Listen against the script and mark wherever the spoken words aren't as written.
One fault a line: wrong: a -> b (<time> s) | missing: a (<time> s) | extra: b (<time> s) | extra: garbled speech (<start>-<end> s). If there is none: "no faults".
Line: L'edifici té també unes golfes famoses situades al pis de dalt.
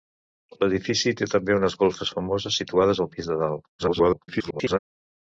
extra: garbled speech (3.8-4.8 s)